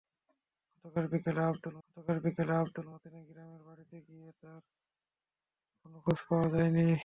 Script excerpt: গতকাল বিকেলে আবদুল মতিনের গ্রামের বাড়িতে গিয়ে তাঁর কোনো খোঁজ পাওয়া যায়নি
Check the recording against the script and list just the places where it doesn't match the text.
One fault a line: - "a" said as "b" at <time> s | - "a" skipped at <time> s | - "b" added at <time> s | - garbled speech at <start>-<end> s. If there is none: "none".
- "গতকাল বিকেলে আবদুল" added at 1.8 s